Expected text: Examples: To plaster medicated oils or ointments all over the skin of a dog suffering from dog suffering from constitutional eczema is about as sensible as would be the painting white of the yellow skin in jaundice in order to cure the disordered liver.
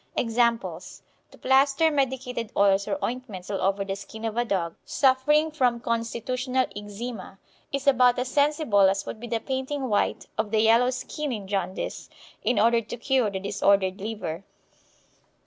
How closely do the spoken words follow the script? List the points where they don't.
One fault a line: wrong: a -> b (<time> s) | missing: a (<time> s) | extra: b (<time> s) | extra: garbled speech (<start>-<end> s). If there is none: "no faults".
missing: dog suffering from (5.8 s)